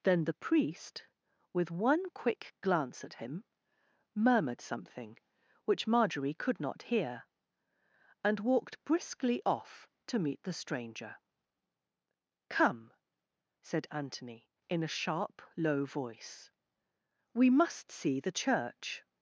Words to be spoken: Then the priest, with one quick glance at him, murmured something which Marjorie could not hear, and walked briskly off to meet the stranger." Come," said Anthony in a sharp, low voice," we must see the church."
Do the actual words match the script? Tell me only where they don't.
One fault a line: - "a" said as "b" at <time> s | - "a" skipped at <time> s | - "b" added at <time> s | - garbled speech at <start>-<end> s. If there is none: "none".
none